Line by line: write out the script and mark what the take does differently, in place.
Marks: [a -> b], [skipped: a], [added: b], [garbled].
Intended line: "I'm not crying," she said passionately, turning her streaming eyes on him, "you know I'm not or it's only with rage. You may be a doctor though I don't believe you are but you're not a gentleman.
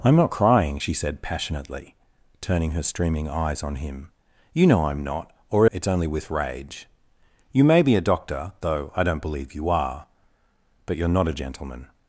"I'm not crying," she said passionately, turning her streaming eyes on him, "you know I'm not or it's only with rage. You may be a doctor though I don't believe you are but you're not a gentleman.